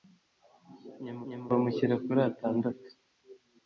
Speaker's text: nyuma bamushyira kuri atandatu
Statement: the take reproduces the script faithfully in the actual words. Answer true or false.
false